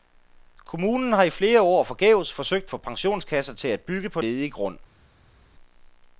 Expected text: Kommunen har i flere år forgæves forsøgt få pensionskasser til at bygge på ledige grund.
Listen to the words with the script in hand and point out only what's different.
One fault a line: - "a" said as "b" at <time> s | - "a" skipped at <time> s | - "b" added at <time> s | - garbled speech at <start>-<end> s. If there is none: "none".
none